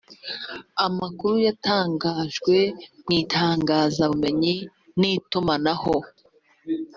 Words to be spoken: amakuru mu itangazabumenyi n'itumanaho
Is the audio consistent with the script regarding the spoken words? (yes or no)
no